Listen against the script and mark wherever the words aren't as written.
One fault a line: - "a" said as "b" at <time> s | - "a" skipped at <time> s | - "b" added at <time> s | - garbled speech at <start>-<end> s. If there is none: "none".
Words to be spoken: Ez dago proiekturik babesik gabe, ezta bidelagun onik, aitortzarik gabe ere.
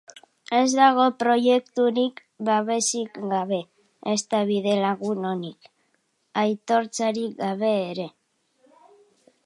none